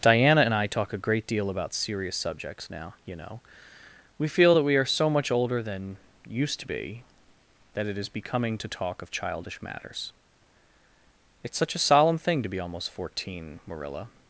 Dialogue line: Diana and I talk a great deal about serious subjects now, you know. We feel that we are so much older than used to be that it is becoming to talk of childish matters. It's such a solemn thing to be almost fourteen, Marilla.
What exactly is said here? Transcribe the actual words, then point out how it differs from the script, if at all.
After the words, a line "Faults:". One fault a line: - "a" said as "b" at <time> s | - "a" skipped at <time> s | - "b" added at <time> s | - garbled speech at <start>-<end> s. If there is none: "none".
Diana and I talk a great deal about serious subjects now, you know. We feel that we are so much older than used to be that it is becoming to talk of childish matters. It's such a solemn thing to be almost fourteen, Marilla.
Faults:
none